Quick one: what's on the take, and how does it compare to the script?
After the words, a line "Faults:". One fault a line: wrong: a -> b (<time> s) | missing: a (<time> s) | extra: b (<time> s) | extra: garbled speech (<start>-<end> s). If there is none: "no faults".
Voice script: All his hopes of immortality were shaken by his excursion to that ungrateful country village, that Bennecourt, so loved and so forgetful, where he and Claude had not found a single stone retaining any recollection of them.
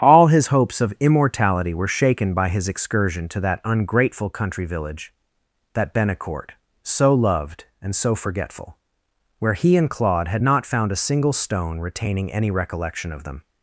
All his hopes of immortality were shaken by his excursion to that ungrateful country village, that Bennecourt, so loved and so forgetful, where he and Claude had not found a single stone retaining any recollection of them.
Faults:
no faults